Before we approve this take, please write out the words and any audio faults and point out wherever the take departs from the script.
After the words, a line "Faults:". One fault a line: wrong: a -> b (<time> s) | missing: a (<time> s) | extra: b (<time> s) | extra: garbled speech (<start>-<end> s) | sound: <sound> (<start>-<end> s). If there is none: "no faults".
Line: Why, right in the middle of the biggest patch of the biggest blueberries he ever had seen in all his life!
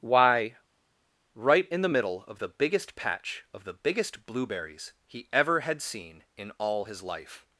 Why, right in the middle of the biggest patch of the biggest blueberries he ever had seen in all his life!
Faults:
no faults